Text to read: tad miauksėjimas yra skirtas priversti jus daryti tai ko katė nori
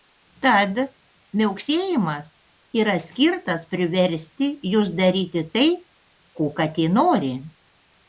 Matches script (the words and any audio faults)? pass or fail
pass